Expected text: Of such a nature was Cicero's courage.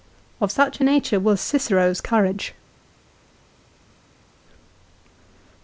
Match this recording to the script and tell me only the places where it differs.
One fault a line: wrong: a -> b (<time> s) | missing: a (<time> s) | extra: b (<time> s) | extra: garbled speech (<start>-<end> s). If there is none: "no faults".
no faults